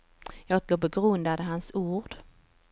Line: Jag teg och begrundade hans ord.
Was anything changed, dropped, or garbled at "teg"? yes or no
yes